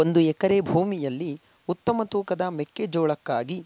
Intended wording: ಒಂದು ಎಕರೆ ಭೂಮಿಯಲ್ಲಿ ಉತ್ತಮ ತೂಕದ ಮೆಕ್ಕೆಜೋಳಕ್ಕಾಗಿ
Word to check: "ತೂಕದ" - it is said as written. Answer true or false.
true